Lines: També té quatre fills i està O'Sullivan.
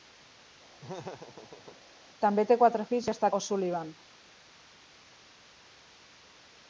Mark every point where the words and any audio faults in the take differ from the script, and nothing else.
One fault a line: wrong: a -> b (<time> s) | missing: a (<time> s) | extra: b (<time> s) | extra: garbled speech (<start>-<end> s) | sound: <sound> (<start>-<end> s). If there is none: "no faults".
sound: laugh (0.8-1.8 s)